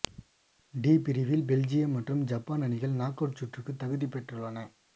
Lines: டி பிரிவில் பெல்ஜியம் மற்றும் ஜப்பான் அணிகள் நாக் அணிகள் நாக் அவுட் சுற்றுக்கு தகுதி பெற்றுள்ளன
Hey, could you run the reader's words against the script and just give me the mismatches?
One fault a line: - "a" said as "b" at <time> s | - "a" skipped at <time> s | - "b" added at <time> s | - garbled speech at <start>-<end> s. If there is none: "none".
- "அணிகள் நாக்" skipped at 3.2 s